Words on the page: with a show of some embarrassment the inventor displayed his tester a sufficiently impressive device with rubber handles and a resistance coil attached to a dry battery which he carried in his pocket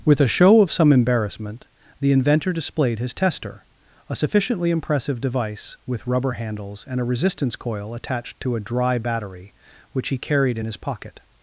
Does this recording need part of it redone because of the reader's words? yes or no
no